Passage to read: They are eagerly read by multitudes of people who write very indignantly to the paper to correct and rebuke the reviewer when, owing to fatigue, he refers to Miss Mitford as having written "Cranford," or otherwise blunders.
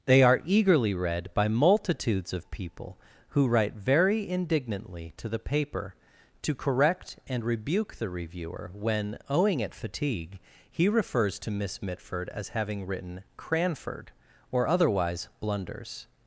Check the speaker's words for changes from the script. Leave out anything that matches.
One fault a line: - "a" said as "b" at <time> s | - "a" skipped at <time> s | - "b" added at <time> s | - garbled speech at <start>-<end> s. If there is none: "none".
- "to" said as "at" at 9.6 s